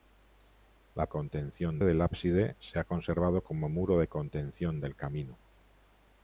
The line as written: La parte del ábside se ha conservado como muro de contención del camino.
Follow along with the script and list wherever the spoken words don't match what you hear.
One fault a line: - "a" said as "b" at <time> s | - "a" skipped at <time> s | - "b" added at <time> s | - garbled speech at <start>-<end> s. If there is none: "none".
- "parte" said as "contención" at 1.1 s